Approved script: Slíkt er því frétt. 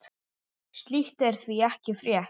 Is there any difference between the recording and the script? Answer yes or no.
yes